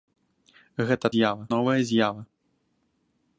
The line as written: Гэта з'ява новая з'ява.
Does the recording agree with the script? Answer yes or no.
yes